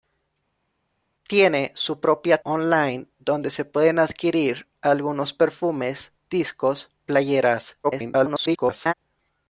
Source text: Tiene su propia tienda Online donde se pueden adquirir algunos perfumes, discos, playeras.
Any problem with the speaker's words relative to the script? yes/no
yes